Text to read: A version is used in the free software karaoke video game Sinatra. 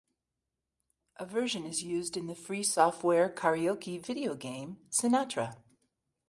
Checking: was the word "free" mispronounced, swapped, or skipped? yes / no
no